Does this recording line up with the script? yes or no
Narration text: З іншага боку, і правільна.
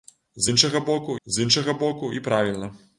no